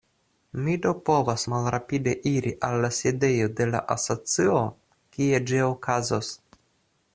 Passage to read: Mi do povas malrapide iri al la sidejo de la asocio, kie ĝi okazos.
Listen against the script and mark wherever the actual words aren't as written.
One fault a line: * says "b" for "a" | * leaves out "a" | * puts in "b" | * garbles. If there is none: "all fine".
all fine